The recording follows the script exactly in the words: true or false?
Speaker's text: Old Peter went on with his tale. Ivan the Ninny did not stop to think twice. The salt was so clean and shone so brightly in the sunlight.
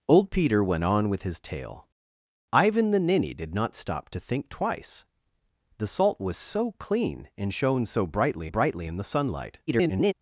false